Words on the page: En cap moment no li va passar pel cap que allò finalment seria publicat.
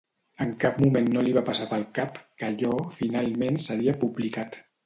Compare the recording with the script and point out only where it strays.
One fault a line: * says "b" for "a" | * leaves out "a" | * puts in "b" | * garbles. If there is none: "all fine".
all fine